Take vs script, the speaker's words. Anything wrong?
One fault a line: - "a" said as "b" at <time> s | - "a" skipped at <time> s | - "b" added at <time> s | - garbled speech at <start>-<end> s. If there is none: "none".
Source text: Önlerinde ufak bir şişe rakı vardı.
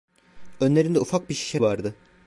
- "rakı" skipped at 1.6 s